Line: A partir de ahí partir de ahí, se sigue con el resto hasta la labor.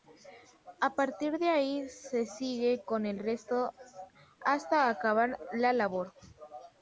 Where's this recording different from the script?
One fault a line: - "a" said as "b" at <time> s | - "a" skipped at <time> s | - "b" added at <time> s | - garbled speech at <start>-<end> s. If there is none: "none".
- "partir de ahí" skipped at 1.9 s
- "acabar" added at 4.9 s